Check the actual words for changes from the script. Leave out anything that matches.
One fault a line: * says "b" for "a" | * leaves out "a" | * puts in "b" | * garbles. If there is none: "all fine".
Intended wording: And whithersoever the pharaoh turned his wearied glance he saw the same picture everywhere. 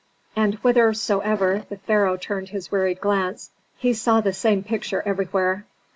all fine